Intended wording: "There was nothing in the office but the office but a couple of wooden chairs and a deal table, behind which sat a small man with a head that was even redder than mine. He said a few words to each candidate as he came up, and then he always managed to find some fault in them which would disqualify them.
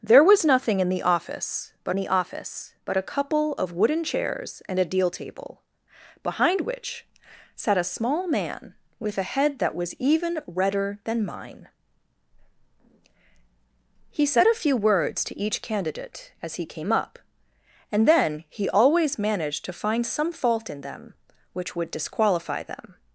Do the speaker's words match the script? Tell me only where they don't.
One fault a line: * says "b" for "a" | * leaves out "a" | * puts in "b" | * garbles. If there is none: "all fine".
all fine